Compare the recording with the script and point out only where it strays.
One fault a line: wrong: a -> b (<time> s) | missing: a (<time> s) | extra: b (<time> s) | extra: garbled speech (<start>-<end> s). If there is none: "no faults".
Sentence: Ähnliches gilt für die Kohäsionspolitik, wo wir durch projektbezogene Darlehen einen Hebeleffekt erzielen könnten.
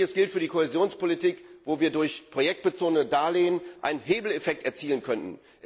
no faults